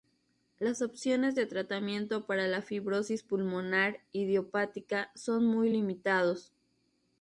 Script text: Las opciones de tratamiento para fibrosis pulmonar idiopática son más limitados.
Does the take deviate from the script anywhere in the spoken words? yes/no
yes